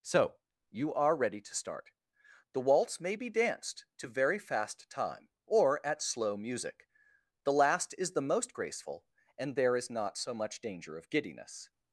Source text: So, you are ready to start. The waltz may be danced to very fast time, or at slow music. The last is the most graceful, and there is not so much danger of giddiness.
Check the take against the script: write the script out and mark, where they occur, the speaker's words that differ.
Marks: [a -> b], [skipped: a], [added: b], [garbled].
So, you are ready to start. The waltz may be danced to very fast time, or at slow music. The last is the most graceful, and there is not so much danger of giddiness.